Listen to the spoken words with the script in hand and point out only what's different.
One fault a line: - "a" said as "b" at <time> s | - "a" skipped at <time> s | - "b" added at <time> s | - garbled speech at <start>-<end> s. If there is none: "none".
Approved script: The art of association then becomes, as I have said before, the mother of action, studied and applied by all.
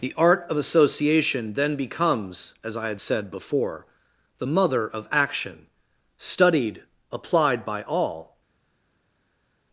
- "have" said as "had" at 2.9 s
- "and" skipped at 6.8 s